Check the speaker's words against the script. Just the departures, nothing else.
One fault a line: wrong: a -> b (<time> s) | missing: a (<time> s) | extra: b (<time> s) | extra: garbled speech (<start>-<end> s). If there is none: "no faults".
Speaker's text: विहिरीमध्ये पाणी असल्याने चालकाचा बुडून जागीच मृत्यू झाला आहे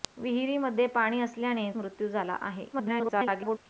missing: चालकाचा बुडून जागीच (1.7 s)
extra: garbled speech (2.7-3.6 s)